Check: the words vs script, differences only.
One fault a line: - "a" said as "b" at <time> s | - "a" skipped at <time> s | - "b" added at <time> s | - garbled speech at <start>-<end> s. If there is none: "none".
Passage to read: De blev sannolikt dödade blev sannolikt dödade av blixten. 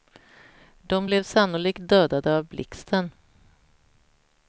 - "blev sannolikt dödade" skipped at 2.4 s